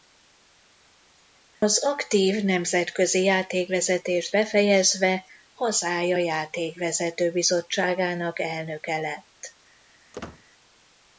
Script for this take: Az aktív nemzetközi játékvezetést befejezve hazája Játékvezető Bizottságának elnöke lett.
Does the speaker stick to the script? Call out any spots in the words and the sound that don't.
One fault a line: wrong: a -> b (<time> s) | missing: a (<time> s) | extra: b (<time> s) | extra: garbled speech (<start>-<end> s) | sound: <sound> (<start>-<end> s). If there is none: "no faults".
sound: dropout (1.5-1.6 s)
sound: squeak (10.1-10.4 s)